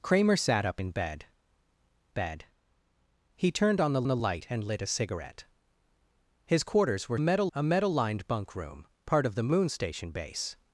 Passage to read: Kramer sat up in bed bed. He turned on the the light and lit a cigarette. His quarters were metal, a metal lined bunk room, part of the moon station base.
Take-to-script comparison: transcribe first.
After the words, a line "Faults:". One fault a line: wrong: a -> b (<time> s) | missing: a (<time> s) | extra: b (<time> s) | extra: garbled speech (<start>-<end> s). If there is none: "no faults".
Kramer sat up in bed bed. He turned on the the light and lit a cigarette. His quarters were metal, a metal lined bunk room, part of the moon station base.
Faults:
no faults